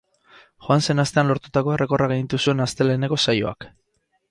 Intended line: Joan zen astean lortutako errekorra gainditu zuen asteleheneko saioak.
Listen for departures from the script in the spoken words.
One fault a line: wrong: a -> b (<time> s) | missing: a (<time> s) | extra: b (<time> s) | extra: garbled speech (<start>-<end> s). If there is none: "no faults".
no faults